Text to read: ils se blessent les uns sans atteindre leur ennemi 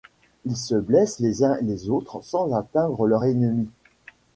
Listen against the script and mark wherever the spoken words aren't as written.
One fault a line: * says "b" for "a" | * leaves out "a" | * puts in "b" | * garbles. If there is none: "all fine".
* puts in "les autres"